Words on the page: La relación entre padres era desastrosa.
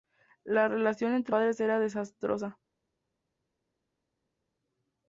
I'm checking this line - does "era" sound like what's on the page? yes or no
yes